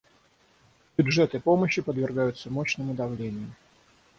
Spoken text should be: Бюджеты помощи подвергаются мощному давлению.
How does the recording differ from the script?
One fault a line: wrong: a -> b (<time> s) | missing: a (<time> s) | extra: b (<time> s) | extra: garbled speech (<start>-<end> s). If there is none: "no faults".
no faults